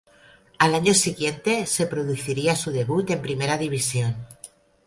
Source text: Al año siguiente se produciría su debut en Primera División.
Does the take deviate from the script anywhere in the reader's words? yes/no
no